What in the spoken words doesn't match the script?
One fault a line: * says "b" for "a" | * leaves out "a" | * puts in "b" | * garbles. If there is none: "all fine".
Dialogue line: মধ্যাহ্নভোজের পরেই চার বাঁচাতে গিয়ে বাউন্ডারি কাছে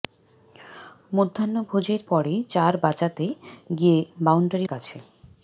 all fine